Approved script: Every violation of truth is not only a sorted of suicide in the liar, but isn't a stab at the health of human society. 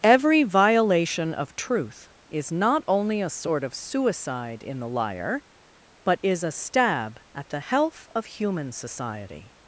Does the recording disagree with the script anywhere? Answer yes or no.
yes